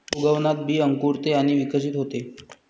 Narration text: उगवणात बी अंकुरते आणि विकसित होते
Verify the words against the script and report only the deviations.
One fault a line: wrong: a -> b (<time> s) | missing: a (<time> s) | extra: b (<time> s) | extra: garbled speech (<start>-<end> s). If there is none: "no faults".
no faults